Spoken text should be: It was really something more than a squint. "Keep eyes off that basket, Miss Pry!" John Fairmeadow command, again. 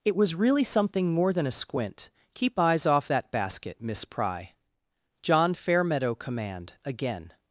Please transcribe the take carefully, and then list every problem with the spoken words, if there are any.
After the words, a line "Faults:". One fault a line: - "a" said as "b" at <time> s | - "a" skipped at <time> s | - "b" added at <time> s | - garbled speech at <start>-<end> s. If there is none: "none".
It was really something more than a squint. "Keep eyes off that basket, Miss Pry!" John Fairmeadow command, again.
Faults:
none